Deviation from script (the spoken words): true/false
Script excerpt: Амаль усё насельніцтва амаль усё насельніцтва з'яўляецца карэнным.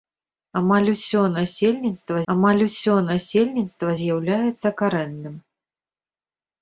false